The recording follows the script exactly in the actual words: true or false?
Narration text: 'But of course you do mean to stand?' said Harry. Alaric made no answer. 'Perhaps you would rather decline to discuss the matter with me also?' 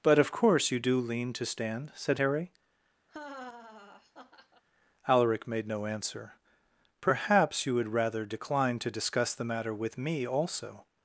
false